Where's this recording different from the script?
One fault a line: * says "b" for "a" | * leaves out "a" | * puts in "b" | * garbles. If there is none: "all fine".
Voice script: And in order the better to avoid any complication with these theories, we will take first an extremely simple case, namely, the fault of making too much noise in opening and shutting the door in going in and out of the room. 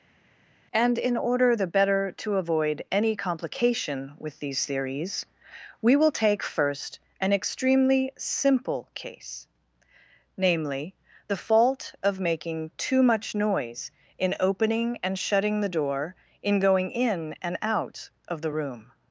all fine